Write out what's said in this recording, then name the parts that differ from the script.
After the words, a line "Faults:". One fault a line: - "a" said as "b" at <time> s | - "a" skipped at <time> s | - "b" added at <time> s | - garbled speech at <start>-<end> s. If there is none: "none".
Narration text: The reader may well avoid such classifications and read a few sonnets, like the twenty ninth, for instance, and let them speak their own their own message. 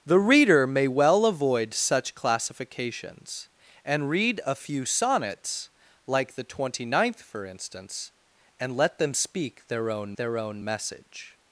The reader may well avoid such classifications and read a few sonnets, like the twenty ninth, for instance, and let them speak their own their own message.
Faults:
none